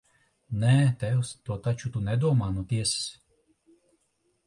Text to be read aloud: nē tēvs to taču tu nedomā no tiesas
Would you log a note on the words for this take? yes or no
no